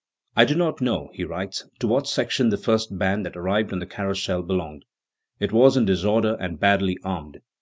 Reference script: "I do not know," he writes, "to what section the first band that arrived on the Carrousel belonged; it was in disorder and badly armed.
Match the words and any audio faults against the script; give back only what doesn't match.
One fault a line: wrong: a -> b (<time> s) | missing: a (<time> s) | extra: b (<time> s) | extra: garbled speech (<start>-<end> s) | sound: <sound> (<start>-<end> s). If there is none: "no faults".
no faults